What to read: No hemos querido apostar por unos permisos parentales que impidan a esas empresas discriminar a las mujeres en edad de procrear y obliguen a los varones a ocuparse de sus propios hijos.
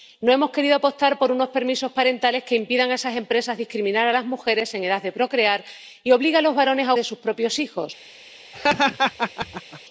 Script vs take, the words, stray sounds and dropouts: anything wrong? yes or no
yes